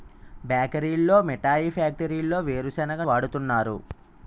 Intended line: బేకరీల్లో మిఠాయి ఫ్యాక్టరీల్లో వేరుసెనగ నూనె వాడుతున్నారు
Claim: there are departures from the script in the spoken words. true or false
true